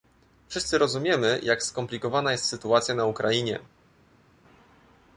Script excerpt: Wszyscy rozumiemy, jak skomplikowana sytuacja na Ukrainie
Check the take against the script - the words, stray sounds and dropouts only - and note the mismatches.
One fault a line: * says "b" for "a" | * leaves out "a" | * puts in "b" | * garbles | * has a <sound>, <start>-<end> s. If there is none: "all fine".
* puts in "jest"